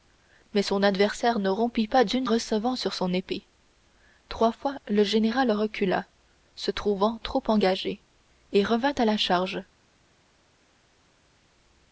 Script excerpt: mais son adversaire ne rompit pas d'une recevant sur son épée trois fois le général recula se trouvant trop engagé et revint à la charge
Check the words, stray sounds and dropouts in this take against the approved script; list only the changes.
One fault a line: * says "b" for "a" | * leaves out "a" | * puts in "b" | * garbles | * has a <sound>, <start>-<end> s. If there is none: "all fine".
all fine